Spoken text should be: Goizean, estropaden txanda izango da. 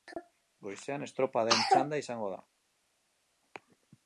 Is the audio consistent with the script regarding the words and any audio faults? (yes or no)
yes